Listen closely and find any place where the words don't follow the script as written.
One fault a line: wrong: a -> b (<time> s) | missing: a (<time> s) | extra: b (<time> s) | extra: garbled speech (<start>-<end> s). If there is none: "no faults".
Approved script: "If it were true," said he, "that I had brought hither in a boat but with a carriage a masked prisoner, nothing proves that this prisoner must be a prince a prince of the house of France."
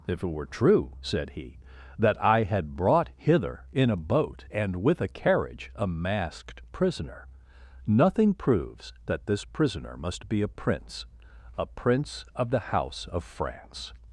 wrong: but -> and (4.5 s)